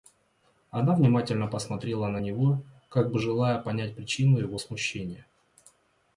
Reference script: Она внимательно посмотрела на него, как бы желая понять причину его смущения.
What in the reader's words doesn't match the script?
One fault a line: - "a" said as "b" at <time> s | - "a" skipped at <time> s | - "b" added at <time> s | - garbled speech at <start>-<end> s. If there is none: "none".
none